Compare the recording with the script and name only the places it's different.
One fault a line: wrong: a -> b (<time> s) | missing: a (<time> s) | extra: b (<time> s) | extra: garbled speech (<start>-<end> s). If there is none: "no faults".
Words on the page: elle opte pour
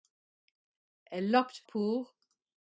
no faults